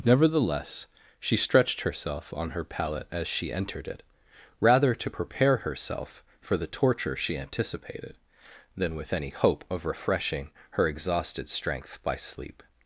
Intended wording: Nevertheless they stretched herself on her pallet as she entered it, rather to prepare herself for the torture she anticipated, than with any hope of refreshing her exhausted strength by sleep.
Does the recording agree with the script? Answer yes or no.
no